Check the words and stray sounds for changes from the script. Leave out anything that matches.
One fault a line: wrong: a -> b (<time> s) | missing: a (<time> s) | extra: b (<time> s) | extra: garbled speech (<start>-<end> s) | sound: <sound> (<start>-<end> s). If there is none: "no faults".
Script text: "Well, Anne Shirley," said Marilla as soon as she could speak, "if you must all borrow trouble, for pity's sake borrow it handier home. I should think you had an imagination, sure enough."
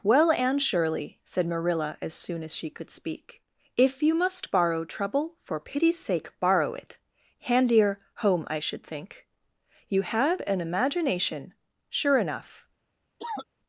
missing: all (4.5 s)
sound: cough (13.2-13.5 s)